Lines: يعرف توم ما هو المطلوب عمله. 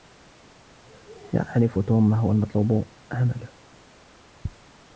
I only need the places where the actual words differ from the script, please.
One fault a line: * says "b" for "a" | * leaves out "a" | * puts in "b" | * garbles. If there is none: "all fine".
all fine